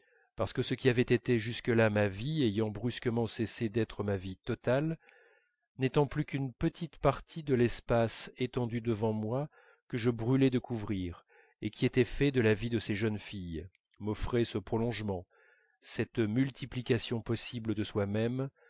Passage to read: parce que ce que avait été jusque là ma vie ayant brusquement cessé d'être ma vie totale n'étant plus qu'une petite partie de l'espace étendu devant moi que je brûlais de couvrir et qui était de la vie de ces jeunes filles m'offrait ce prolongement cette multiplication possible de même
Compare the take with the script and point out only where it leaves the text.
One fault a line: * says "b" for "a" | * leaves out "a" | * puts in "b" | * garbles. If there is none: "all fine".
* says "qui" for "que"
* puts in "fait"
* puts in "soi"